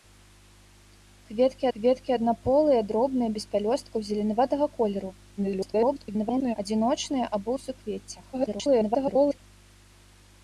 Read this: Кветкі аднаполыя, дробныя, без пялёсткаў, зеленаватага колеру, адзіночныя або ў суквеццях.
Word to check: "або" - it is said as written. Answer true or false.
true